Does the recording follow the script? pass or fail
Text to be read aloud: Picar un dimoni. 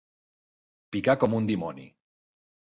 fail